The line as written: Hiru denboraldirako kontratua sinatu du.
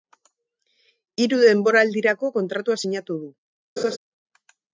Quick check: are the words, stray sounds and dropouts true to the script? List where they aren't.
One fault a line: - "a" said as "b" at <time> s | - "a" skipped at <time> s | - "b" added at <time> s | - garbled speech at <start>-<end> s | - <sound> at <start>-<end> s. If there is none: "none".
- laugh at 3.8-4.0 s